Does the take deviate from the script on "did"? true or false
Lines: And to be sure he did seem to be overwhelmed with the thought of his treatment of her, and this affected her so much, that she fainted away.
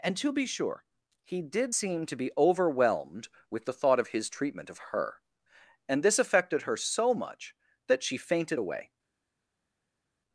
false